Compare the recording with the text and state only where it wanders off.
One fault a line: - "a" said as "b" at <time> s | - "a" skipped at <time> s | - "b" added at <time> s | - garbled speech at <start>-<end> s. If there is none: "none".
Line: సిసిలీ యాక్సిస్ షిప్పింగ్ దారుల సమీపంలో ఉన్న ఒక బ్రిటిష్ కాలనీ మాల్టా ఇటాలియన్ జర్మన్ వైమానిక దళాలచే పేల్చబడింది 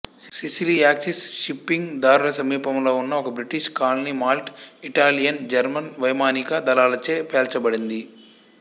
none